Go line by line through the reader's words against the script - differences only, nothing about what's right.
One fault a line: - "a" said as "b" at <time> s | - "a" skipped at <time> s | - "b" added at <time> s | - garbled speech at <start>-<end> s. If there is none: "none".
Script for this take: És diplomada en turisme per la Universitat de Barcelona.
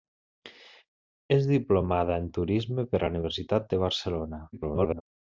- garbled speech at 4.5-5.0 s